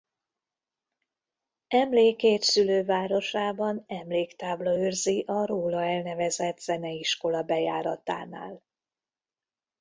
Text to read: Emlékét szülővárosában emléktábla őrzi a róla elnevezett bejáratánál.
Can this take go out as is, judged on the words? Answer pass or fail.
fail